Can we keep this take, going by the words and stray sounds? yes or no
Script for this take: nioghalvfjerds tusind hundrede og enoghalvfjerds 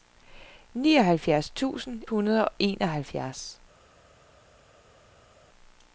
yes